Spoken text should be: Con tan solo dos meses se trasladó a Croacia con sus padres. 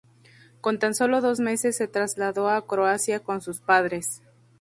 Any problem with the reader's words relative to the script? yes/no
no